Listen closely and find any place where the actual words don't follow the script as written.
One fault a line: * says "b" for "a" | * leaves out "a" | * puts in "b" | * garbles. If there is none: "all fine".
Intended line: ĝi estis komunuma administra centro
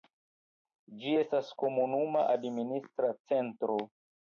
* says "estas" for "estis"